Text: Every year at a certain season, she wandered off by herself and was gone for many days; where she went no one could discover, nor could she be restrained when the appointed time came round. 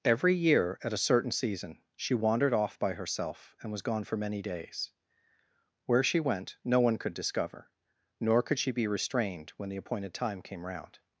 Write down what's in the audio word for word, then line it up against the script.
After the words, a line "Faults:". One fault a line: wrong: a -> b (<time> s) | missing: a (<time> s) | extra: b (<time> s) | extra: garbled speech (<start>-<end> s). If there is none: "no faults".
Every year at a certain season, she wandered off by herself and was gone for many days; where she went no one could discover, nor could she be restrained when the appointed time came round.
Faults:
no faults